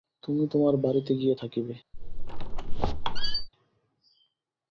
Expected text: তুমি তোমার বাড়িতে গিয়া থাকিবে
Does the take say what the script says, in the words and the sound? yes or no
no